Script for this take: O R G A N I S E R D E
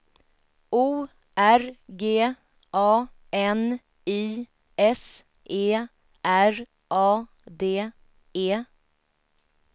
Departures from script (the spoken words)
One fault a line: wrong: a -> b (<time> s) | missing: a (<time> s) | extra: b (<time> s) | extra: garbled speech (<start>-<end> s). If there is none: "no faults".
extra: A (6.9 s)